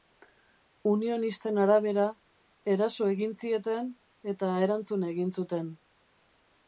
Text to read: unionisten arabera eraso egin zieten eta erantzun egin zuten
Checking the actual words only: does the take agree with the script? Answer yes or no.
yes